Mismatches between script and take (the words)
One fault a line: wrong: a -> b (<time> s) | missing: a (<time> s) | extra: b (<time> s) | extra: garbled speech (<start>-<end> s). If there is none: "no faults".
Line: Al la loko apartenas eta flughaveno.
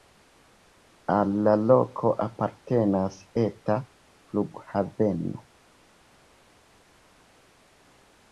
no faults